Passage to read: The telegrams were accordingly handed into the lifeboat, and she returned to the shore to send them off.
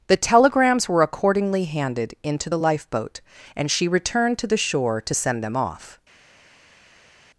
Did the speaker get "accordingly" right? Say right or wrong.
right